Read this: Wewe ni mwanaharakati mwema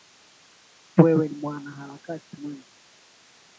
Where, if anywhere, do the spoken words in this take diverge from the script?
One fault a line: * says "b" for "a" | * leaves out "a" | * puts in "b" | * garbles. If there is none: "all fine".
all fine